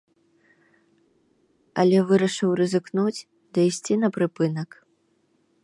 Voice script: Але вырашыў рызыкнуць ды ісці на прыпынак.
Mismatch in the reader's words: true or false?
false